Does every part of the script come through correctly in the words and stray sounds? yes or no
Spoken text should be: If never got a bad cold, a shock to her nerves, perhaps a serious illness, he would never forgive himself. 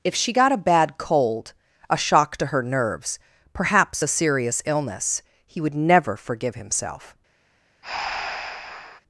no